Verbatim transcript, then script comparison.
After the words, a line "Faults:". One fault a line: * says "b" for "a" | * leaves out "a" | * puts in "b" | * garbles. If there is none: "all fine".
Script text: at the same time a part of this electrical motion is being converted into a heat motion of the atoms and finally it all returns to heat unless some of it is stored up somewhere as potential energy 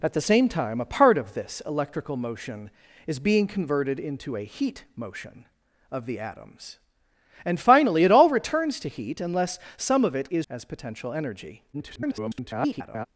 at the same time a part of this electrical motion is being converted into a heat motion of the atoms and finally it all returns to heat unless some of it is as potential energy [garbled]
Faults:
* leaves out "stored up somewhere"
* garbles